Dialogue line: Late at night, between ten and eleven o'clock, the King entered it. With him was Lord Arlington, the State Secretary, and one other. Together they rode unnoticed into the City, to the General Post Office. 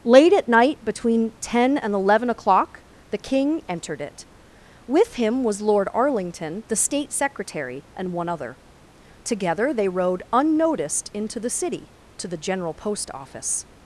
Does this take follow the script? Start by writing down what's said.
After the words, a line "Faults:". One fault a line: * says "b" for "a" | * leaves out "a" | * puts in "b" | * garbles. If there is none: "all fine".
Late at night, between ten and eleven o'clock, the King entered it. With him was Lord Arlington, the State Secretary, and one other. Together they rode unnoticed into the City, to the General Post Office.
Faults:
all fine